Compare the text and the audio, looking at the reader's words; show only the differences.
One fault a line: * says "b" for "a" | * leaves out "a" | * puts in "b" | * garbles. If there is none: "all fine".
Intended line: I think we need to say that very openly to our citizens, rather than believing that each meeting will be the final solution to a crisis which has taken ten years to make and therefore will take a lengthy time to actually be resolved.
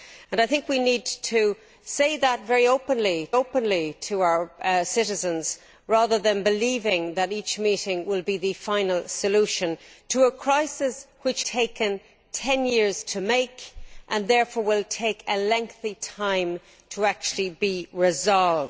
* puts in "openly"
* leaves out "has"